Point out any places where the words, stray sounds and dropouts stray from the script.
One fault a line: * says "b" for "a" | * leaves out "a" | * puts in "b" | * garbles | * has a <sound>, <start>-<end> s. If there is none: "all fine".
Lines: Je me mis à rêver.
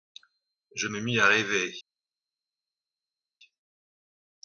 all fine